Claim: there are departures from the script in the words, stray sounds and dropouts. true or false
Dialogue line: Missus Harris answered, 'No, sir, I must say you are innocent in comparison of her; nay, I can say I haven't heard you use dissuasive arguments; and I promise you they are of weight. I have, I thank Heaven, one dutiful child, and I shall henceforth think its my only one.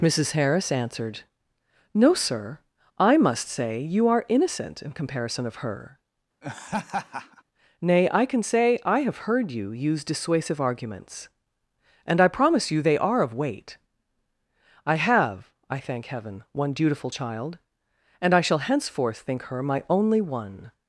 true